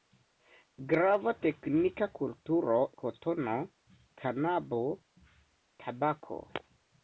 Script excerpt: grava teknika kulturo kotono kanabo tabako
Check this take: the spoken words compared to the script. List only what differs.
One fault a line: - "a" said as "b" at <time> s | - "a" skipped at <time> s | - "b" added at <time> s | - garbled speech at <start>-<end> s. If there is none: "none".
none